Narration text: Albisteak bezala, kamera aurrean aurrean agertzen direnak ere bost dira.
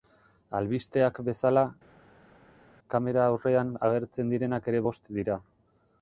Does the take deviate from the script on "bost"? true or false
false